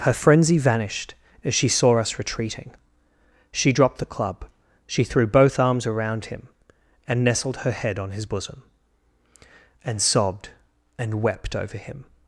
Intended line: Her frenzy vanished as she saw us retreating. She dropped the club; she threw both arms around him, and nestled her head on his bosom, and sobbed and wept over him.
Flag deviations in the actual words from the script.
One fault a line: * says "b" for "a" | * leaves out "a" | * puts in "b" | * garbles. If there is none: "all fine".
all fine